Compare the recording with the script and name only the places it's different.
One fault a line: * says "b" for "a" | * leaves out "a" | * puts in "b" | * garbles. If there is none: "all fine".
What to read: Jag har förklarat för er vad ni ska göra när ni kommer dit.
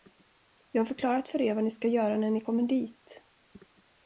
all fine